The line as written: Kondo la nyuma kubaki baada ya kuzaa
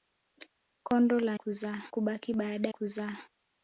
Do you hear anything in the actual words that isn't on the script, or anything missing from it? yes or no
yes